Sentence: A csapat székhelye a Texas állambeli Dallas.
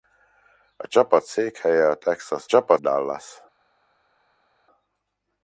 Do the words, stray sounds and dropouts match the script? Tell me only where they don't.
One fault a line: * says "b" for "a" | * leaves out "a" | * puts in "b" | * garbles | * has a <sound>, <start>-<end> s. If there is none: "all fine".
* says "csapat" for "állambeli"